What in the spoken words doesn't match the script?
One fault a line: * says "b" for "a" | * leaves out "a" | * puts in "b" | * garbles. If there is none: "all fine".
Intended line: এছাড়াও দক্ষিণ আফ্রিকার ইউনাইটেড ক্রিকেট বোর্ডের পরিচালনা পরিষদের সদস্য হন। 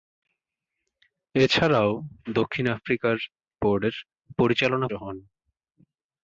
* leaves out "ইউনাইটেড ক্রিকেট"
* leaves out "পরিষদের সদস্য"